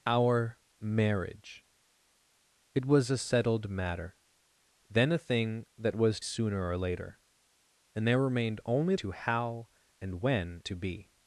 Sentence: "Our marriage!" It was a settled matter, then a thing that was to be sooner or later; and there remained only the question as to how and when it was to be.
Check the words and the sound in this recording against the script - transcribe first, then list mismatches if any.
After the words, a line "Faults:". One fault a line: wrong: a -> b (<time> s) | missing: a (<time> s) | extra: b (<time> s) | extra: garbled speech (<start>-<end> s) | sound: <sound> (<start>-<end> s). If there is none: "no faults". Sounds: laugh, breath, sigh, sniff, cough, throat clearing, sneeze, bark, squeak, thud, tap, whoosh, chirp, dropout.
"Our marriage!" It was a settled matter, then a thing that was sooner or later; and there remained only to how and when to be.
Faults:
missing: to be (6.2 s)
missing: the question as (8.9 s)
missing: it was (10.6 s)